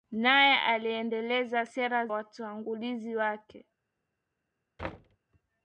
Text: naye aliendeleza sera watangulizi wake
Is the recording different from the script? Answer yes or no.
no